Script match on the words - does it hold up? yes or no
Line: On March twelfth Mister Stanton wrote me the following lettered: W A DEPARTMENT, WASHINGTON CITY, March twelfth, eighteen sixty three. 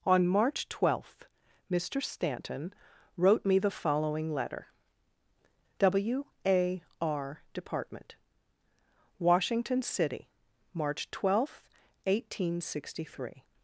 no